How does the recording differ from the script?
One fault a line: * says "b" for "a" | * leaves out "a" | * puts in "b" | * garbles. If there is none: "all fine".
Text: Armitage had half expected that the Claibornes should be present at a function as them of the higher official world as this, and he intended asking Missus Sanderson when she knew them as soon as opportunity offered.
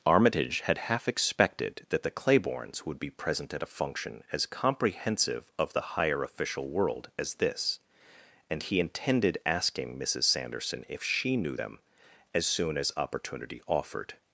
* says "would" for "should"
* says "comprehensive" for "them"
* says "if" for "when"